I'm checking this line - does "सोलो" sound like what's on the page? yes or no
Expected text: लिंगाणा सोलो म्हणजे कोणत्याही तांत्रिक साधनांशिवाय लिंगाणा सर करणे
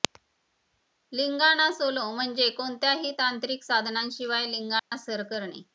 yes